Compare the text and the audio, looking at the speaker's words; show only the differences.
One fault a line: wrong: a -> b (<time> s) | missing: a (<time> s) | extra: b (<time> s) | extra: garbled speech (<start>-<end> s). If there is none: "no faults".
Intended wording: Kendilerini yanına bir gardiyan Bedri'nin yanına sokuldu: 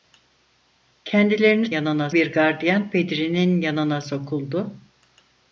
no faults